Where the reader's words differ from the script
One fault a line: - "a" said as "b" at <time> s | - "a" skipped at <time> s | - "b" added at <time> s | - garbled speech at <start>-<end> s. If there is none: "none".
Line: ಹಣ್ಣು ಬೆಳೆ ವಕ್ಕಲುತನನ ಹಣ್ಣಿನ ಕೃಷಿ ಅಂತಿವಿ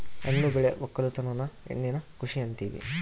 none